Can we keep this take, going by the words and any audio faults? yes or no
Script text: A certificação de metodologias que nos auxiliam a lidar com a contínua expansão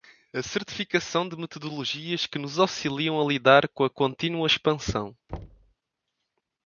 no